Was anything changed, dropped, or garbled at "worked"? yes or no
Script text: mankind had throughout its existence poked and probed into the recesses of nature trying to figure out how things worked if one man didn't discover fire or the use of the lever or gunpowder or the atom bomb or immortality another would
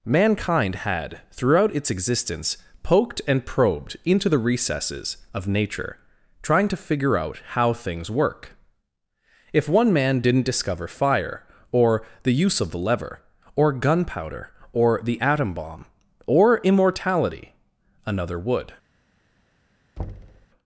yes